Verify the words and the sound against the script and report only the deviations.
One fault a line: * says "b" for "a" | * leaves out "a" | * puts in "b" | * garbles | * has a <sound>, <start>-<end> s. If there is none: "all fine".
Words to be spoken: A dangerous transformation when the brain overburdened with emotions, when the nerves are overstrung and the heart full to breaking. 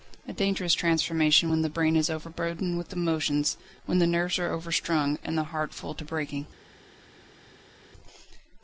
* puts in "is"